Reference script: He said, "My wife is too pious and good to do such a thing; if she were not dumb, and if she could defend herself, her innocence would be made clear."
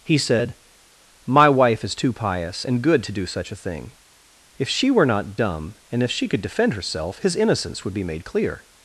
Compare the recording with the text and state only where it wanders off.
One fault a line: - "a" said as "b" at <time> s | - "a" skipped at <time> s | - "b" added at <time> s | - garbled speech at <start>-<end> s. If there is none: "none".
- "her" said as "his" at 7.2 s